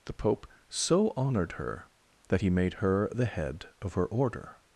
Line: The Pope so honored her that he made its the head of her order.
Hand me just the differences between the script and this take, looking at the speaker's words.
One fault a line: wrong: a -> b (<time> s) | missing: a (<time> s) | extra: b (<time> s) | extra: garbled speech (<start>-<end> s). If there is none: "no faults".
wrong: its -> her (2.7 s)